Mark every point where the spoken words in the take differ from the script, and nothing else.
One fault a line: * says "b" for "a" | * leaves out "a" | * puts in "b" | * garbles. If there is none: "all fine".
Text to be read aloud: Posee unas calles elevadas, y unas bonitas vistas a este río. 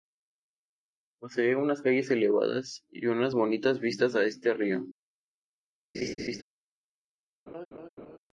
all fine